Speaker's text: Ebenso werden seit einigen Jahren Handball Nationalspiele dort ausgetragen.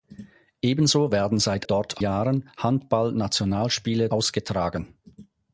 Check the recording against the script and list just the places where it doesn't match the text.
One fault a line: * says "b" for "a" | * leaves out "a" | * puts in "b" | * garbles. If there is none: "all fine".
* says "dort" for "einigen"
* leaves out "dort"